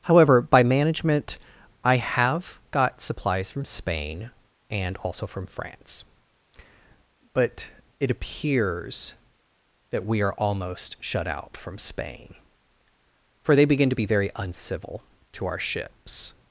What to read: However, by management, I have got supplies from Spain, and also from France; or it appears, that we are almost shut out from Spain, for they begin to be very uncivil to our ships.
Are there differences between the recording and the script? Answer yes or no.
yes